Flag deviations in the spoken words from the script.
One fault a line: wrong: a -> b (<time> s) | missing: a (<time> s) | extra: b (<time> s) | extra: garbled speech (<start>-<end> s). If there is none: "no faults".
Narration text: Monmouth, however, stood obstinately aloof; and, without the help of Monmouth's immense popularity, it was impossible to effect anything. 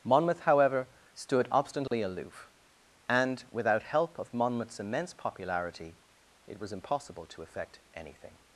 missing: the (3.8 s)